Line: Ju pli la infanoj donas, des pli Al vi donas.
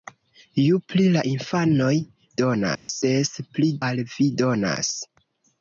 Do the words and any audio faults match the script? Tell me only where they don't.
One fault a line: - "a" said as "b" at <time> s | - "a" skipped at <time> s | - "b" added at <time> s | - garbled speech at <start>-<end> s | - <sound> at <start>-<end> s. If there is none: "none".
- dropout at 2.8-2.9 s